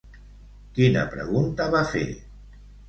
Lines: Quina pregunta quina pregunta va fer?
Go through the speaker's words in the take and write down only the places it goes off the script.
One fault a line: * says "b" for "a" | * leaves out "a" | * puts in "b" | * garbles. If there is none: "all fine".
* leaves out "quina pregunta"